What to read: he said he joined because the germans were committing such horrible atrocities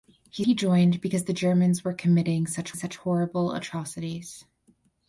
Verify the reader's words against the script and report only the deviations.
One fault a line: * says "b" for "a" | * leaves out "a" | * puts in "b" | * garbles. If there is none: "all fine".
* leaves out "said"
* puts in "such"